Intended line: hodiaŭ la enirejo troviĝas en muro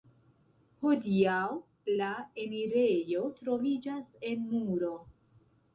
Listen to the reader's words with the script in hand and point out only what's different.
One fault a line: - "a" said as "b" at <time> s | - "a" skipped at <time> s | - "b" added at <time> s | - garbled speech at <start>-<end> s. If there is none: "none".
none